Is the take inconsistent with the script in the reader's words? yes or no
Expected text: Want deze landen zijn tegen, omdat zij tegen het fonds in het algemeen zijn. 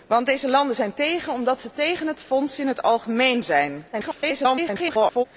yes